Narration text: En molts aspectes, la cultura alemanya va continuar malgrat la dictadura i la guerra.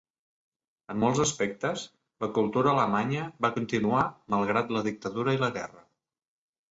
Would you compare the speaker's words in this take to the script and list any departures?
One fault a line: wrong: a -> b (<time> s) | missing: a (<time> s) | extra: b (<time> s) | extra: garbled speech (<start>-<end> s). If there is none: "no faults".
no faults